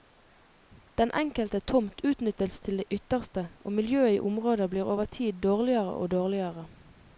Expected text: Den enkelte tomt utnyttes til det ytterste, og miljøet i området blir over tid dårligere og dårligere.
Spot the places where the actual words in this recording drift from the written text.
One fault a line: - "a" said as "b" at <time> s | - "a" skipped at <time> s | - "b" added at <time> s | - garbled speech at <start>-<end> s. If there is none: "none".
none